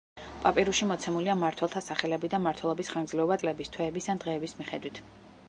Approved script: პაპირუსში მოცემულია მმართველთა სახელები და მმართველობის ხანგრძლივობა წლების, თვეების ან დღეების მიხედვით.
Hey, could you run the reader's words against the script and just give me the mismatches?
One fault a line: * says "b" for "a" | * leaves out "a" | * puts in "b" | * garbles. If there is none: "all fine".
all fine